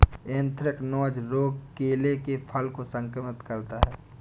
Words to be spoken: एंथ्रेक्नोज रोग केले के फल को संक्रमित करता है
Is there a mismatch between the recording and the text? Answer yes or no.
no